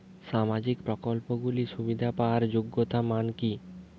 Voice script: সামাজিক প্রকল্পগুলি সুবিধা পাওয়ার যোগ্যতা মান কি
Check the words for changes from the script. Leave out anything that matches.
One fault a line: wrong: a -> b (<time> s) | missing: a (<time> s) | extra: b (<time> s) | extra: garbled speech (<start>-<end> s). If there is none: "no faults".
no faults